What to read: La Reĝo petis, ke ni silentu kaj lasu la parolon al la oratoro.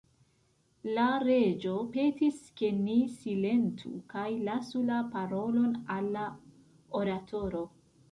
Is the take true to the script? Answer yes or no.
yes